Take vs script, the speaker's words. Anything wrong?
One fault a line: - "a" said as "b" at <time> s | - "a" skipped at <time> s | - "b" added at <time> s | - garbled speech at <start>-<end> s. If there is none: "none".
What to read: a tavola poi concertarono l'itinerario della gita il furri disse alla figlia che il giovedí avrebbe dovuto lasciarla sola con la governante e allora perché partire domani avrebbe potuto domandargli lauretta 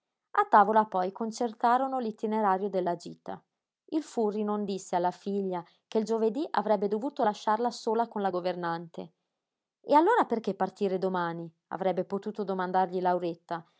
- "non" added at 4.4 s